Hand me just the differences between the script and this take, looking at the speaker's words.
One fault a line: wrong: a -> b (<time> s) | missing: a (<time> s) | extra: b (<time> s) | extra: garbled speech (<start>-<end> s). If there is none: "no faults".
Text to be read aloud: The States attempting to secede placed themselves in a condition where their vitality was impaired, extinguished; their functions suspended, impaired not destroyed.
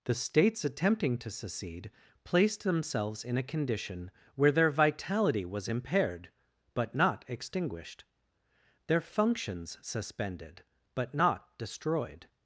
extra: but not (6.7 s)
wrong: impaired -> but (10.9 s)